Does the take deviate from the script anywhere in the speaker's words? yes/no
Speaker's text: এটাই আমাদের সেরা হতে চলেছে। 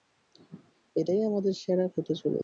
no